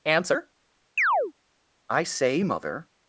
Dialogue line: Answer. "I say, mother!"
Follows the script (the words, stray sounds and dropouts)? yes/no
no